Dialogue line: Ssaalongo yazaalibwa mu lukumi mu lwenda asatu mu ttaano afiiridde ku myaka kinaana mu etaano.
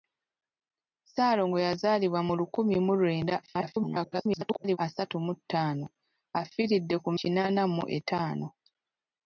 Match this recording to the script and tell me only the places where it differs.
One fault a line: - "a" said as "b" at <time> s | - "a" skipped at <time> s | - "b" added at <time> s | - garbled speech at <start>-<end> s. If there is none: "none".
- garbled speech at 3.4-4.8 s
- "myaka" skipped at 7.1 s